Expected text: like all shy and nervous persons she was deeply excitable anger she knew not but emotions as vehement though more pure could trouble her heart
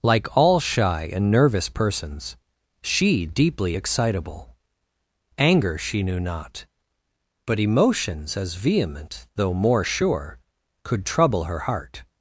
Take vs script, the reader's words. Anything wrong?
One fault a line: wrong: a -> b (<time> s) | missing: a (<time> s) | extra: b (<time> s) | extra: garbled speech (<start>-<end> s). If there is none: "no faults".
missing: was (3.2 s)
wrong: pure -> sure (9.8 s)